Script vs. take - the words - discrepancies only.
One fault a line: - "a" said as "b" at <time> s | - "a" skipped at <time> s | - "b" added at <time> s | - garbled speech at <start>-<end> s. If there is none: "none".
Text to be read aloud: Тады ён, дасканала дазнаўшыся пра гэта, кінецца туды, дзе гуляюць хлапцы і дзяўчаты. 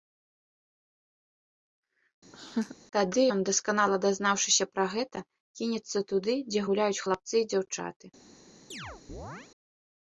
none